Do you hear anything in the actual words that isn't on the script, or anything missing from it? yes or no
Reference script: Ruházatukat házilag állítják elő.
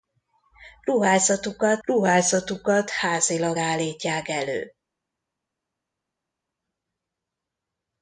yes